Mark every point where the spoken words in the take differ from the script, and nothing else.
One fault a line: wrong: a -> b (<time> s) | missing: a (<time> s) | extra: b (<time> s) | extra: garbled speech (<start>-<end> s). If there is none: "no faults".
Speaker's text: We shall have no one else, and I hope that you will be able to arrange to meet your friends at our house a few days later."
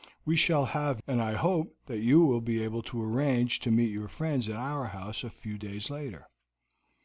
missing: no one else (1.0 s)